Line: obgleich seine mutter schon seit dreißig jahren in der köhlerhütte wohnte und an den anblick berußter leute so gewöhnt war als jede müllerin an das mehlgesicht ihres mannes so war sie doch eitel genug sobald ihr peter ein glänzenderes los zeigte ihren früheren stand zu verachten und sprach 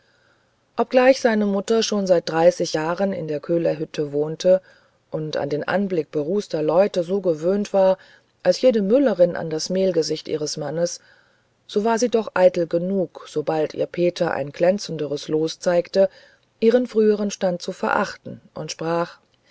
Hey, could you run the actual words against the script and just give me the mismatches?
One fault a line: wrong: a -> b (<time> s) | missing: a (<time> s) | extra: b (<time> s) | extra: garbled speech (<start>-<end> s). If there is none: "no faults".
no faults